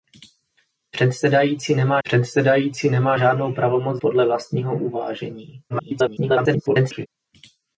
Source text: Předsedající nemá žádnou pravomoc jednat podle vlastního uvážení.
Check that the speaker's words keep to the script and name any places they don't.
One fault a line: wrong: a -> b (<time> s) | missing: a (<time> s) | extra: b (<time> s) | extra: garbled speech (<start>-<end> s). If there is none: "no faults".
extra: předsedající nemá (2.0 s)
missing: jednat (4.0 s)
extra: garbled speech (5.7-7.1 s)